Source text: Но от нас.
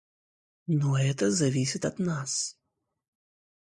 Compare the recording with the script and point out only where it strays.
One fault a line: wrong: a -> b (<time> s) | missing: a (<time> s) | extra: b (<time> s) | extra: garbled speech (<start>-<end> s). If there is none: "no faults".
extra: это зависит (1.0 s)